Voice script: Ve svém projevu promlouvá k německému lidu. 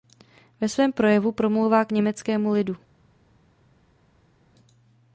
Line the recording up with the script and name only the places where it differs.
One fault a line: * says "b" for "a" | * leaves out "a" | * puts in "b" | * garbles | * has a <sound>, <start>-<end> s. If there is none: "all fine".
all fine